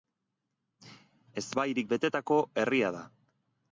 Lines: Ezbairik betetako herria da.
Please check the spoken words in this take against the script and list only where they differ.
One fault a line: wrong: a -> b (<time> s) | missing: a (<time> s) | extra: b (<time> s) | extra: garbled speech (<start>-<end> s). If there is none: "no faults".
no faults